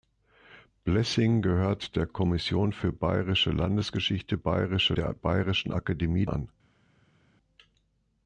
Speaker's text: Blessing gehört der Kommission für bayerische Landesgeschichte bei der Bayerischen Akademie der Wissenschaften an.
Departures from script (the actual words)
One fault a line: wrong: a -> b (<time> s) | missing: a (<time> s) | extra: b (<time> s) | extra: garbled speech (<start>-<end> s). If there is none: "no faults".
wrong: bei -> bayerische (4.3 s)
missing: der Wissenschaften (6.2 s)